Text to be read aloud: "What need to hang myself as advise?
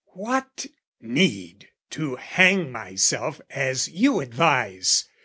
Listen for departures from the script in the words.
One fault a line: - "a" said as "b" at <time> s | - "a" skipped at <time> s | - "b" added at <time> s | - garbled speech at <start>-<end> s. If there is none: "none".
- "you" added at 3.9 s